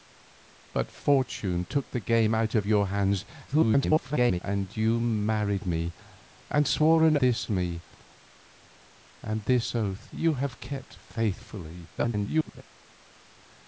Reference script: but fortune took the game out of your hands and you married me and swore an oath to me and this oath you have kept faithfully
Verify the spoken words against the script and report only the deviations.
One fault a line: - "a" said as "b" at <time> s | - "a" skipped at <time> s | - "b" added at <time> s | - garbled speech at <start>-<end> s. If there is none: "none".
- garbled speech at 3.5-4.4 s
- "oath" said as "this" at 7.2 s
- garbled speech at 12.0-12.6 s